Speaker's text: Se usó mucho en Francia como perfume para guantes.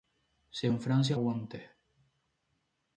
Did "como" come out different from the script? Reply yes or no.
yes